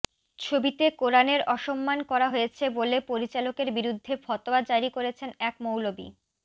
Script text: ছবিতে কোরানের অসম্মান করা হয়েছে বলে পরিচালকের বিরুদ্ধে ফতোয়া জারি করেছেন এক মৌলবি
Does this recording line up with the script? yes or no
yes